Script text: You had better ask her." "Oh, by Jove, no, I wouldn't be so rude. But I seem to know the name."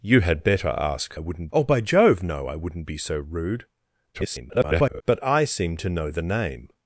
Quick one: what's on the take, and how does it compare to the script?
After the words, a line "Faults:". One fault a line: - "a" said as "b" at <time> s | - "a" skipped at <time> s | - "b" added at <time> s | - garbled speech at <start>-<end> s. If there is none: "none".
You had better ask wouldn't." "Oh, by Jove, no, I wouldn't be so rude. [garbled] But I seem to know the name."
Faults:
- "her" said as "wouldn't" at 1.2 s
- garbled speech at 4.1-5.0 s